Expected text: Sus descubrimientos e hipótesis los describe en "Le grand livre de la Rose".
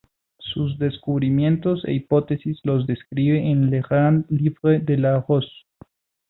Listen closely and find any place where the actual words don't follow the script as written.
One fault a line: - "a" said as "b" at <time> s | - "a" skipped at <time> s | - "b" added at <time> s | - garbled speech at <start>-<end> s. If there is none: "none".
none